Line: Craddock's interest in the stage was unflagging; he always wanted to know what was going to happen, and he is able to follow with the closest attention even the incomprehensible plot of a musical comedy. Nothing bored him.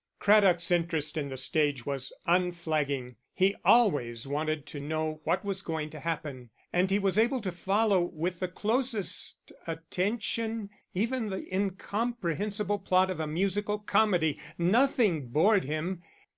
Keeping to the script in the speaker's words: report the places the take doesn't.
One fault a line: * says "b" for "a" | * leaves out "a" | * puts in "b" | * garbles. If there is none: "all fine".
* says "was" for "is"